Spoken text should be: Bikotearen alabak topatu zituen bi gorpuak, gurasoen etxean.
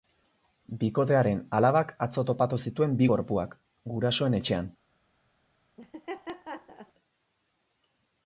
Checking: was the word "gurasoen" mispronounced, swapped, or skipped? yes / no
no